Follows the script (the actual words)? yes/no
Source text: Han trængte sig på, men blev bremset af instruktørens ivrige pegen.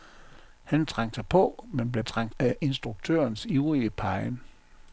no